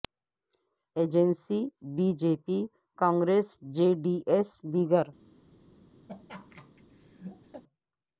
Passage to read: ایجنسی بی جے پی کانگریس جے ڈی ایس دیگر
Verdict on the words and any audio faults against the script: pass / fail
fail